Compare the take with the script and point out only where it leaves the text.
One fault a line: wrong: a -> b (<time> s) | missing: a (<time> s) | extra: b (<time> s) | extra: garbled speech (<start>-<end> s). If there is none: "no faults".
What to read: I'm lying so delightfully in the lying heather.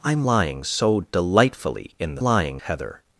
no faults